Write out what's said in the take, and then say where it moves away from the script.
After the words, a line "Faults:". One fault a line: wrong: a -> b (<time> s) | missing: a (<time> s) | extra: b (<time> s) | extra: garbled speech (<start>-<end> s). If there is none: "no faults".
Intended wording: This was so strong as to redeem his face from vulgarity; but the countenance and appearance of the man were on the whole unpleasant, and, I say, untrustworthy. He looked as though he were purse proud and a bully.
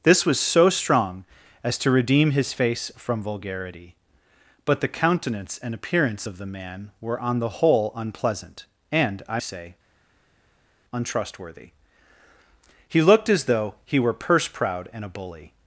This was so strong as to redeem his face from vulgarity; but the countenance and appearance of the man were on the whole unpleasant, and, I say, untrustworthy. He looked as though he were purse proud and a bully.
Faults:
no faults